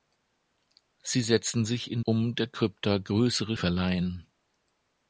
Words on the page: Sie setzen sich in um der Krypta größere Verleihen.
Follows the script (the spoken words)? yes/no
yes